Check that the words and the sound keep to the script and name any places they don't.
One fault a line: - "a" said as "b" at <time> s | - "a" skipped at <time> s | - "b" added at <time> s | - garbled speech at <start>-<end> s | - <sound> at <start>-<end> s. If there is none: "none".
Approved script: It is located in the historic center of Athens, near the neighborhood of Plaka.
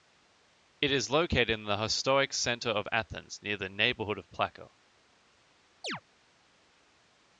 - chirp at 5.8-6.0 s